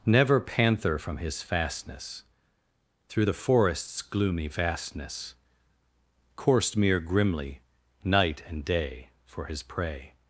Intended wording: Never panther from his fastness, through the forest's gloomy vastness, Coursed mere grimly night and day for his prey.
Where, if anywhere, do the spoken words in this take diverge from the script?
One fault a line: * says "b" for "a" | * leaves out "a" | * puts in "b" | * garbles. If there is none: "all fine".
all fine